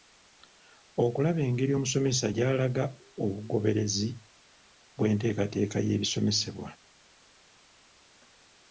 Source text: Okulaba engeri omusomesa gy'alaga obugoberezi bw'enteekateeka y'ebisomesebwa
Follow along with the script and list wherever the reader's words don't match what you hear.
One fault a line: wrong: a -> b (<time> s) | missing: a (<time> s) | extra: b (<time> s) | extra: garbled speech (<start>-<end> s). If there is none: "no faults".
no faults